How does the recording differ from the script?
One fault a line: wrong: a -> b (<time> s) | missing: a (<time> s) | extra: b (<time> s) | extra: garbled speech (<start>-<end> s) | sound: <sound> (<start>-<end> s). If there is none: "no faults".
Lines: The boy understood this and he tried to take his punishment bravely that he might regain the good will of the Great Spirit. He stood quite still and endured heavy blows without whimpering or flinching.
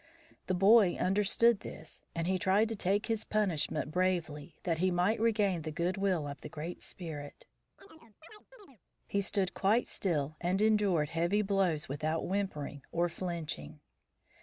sound: chirp (7.8-8.8 s)